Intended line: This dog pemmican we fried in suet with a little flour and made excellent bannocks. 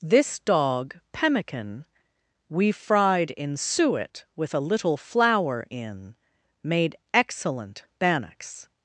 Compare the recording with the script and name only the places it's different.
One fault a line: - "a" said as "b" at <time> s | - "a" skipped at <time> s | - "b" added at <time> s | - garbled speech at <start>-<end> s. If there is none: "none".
- "and" said as "in" at 5.7 s